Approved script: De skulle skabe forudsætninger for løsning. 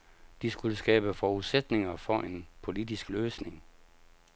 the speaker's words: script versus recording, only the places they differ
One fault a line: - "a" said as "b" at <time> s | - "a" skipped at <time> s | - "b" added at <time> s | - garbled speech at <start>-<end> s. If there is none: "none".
- "en politisk" added at 2.2 s